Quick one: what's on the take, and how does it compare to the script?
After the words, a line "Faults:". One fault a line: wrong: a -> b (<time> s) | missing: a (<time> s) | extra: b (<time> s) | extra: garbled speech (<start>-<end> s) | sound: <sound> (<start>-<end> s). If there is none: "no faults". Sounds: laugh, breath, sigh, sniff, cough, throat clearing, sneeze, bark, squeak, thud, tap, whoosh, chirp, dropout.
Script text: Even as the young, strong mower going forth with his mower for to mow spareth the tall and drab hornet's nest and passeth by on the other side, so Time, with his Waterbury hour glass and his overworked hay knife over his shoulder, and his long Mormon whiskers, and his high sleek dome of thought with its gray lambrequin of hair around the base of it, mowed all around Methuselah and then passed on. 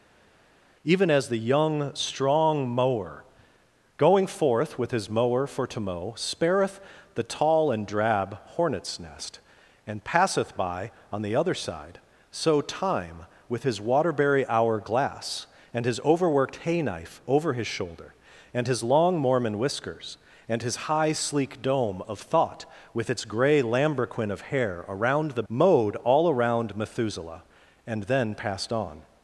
Even as the young, strong mower going forth with his mower for to mow spareth the tall and drab hornet's nest and passeth by on the other side, so Time, with his Waterbury hour glass and his overworked hay knife over his shoulder, and his long Mormon whiskers, and his high sleek dome of thought with its gray lambrequin of hair around the mowed all around Methuselah and then passed on.
Faults:
missing: base of it (25.4 s)